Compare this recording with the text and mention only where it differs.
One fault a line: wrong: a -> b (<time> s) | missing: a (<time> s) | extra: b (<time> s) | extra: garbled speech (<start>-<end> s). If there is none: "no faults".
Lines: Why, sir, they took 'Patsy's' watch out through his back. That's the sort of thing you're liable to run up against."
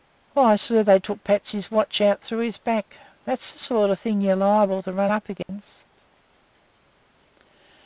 no faults